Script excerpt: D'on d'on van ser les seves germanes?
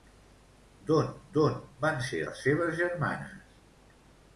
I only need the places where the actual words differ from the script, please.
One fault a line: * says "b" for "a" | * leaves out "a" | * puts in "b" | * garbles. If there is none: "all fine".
all fine